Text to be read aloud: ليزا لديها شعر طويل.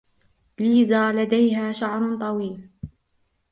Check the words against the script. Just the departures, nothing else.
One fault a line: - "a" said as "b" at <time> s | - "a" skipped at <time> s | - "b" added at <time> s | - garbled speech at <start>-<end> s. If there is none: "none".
none